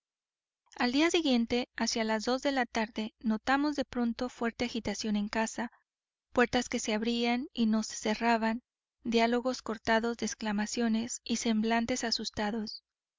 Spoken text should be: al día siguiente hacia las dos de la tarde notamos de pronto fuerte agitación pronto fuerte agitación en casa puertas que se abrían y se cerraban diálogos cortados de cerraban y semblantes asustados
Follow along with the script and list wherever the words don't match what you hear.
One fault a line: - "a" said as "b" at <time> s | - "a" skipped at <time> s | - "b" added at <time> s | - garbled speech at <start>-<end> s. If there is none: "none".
- "pronto fuerte agitación" skipped at 5.2 s
- "no" added at 7.7 s
- "cerraban" said as "exclamaciones" at 10.3 s